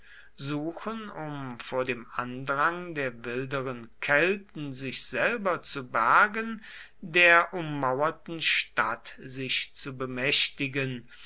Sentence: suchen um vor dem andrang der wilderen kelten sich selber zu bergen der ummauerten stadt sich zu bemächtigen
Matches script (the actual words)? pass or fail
pass